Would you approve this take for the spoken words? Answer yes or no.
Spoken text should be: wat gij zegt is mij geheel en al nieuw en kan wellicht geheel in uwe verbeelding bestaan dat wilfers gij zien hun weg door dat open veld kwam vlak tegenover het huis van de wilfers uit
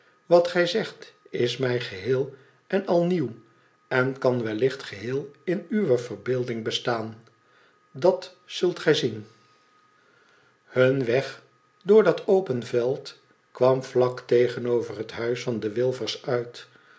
no